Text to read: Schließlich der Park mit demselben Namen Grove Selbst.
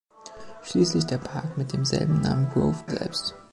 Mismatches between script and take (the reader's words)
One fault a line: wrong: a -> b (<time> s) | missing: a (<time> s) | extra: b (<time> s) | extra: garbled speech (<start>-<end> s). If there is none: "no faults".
no faults